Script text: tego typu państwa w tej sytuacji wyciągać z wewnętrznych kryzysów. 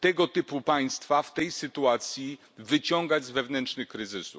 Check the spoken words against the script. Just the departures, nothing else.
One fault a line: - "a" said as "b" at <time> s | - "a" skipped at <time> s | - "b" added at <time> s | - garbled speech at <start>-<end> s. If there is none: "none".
none